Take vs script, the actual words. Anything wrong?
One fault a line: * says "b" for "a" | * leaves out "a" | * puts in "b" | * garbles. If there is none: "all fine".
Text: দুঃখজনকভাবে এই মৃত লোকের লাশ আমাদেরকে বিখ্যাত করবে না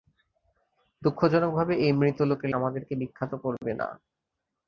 * leaves out "লাশ"